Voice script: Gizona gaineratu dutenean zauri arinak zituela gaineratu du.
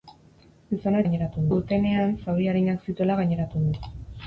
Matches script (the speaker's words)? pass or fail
pass